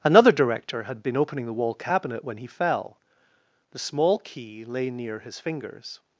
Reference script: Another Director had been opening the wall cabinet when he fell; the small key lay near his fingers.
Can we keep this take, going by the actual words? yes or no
yes